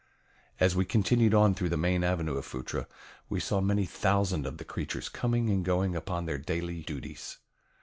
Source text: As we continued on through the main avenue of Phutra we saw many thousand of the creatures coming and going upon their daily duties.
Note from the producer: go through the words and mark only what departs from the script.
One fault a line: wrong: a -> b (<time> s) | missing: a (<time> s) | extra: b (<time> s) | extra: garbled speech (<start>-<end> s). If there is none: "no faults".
no faults